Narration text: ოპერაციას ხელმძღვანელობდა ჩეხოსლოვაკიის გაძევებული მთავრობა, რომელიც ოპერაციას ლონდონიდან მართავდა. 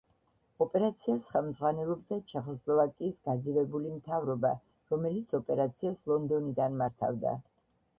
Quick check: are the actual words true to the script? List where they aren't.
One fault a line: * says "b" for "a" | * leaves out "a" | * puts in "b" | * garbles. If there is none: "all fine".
all fine